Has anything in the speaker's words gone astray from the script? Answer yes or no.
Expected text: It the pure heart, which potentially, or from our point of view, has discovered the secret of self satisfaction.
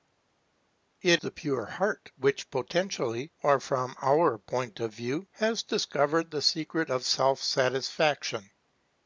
no